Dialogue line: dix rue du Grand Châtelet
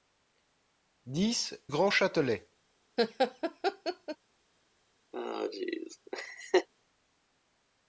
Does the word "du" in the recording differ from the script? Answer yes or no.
yes